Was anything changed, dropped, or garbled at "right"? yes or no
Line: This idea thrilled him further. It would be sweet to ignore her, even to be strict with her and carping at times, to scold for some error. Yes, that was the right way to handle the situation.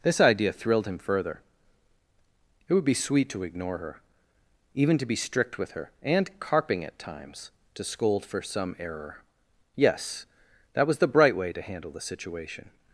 yes